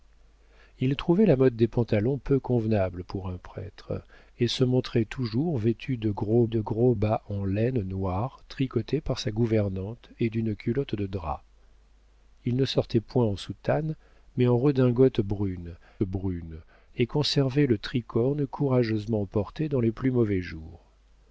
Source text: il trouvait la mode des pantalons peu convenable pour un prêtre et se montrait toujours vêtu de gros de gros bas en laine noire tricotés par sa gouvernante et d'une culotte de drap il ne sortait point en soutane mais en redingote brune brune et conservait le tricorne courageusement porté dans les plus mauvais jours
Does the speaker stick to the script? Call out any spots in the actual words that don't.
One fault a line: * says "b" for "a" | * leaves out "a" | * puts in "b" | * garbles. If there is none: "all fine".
all fine